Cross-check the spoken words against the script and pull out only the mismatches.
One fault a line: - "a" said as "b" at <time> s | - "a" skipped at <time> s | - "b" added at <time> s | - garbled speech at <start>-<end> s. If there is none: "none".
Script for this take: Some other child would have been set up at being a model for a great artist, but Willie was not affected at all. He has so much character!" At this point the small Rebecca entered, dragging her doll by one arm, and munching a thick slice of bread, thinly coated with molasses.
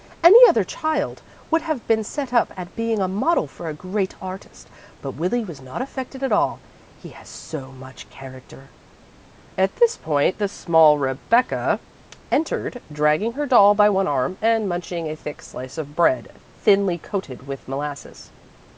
- "Some" said as "Any" at 0.2 s